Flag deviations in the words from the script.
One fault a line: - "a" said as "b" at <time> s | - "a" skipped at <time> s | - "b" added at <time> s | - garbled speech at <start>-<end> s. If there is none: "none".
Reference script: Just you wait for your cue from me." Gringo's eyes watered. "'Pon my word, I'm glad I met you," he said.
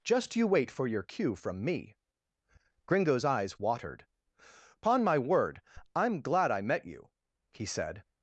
none